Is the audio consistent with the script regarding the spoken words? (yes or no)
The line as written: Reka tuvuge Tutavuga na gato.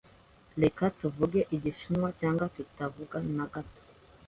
no